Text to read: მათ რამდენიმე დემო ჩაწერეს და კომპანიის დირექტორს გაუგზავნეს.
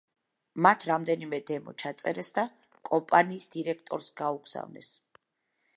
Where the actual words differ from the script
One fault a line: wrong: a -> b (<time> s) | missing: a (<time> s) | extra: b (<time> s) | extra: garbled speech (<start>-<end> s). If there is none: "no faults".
no faults